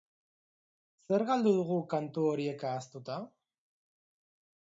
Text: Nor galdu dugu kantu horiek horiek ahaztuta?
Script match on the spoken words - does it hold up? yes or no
no